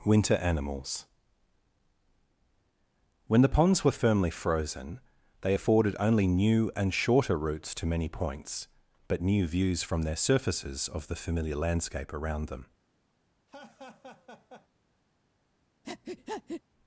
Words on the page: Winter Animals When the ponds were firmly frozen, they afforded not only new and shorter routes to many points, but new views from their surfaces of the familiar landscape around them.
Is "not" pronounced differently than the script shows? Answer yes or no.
yes